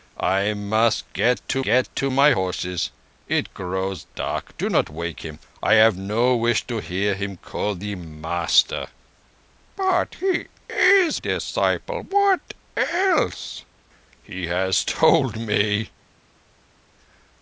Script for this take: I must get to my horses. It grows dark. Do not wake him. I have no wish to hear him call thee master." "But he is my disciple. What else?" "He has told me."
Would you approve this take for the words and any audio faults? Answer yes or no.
no